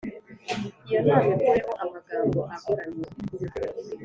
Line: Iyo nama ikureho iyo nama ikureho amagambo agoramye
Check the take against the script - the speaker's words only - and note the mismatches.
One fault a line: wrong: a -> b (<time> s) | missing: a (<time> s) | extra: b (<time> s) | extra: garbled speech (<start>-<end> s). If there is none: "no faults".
missing: iyo nama ikureho (1.7 s)